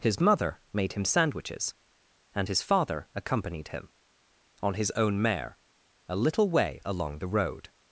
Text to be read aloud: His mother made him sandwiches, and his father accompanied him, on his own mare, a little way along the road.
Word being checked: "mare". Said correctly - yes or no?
yes